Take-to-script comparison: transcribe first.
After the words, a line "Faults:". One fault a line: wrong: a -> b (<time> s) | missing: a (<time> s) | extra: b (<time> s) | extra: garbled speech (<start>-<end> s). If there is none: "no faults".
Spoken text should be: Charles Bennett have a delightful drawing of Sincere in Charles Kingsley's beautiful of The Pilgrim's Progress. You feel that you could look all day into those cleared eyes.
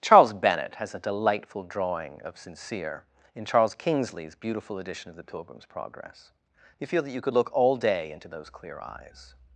Charles Bennett has a delightful drawing of Sincere in Charles Kingsley's beautiful edition of The Pilgrim's Progress. You feel that you could look all day into those clear eyes.
Faults:
wrong: have -> has (0.8 s)
extra: edition (4.8 s)
wrong: cleared -> clear (8.5 s)